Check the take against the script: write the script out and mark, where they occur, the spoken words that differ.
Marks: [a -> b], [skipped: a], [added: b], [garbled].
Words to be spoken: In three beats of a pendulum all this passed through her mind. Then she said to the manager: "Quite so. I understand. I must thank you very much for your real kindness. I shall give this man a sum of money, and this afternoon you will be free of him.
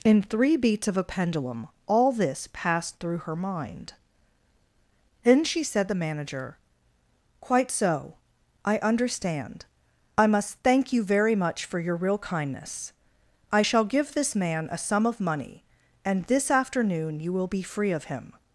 In three beats of a pendulum all this passed through her mind. Then she said [skipped: to] the manager: "Quite so. I understand. I must thank you very much for your real kindness. I shall give this man a sum of money, and this afternoon you will be free of him.